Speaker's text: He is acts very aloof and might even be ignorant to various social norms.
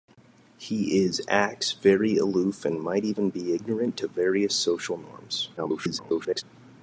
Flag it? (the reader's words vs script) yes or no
yes